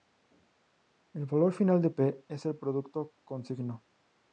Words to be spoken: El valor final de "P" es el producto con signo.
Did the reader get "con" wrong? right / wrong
right